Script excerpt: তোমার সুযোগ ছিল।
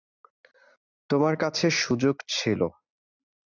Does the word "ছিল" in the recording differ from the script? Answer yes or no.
no